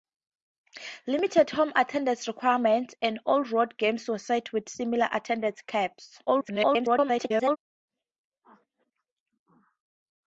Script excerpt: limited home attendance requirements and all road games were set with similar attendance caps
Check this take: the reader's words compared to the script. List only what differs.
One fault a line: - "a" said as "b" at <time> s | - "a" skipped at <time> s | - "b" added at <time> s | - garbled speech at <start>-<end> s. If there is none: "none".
- garbled speech at 6.3-7.6 s